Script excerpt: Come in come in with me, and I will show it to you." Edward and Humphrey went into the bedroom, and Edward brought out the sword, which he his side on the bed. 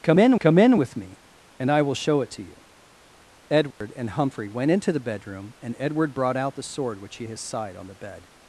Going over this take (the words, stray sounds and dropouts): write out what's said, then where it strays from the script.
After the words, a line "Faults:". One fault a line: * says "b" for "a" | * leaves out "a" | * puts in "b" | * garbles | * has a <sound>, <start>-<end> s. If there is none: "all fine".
Come in come in with me, and I will show it to you." Edward and Humphrey went into the bedroom, and Edward brought out the sword, which he his side on the bed.
Faults:
* has a dropout, 3.7-3.8 s